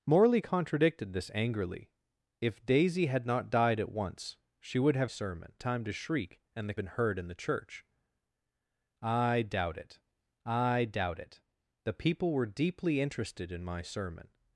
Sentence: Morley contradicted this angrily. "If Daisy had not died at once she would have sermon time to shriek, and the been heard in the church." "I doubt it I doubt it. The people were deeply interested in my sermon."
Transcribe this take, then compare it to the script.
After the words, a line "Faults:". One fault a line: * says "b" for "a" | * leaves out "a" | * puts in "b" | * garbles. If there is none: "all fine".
Morley contradicted this angrily. "If Daisy had not died at once she would have sermon time to shriek, and the been heard in the church." "I doubt it I doubt it. The people were deeply interested in my sermon."
Faults:
all fine